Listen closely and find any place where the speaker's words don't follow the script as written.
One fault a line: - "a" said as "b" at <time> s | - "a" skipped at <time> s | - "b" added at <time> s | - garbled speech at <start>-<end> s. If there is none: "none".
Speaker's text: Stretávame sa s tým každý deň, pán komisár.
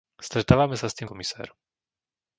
- "každý deň pán" skipped at 1.1 s